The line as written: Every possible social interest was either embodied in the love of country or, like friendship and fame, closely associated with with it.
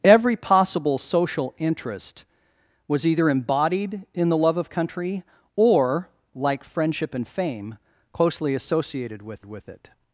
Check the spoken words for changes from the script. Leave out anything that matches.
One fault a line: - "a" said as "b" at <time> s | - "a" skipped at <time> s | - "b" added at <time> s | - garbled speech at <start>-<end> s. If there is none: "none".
none